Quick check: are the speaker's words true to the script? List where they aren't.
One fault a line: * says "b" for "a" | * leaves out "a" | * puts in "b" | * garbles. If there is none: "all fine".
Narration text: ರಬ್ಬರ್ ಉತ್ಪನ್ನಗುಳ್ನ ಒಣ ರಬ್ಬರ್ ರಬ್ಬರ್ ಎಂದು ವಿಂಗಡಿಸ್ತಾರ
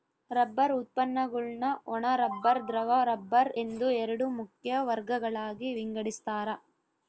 * puts in "ದ್ರವ"
* puts in "ಎರಡು ಮುಖ್ಯ ವರ್ಗಗಳಾಗಿ"